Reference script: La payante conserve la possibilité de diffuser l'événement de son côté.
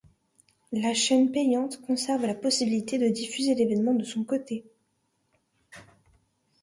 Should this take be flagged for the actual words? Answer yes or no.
yes